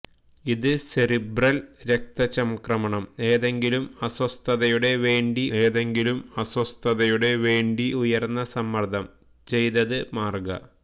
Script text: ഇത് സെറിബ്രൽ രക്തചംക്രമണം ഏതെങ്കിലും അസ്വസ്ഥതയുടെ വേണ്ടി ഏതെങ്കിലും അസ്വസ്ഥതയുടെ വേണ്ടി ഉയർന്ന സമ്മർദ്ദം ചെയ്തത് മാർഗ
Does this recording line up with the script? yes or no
yes